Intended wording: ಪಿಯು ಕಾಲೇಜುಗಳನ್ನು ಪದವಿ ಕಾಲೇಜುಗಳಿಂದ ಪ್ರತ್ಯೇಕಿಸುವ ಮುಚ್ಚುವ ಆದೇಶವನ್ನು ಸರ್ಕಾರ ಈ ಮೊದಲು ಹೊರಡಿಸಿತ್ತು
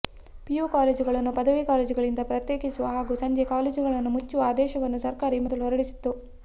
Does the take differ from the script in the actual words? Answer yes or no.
yes